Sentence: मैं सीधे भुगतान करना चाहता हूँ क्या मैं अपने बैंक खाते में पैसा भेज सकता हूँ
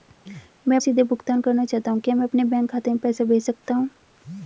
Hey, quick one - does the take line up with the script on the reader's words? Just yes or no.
yes